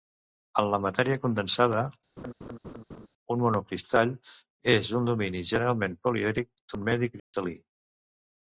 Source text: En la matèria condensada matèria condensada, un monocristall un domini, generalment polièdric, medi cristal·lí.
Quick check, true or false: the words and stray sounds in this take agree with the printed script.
false